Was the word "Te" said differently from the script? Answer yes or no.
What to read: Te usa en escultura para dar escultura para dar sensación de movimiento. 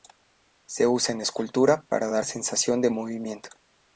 yes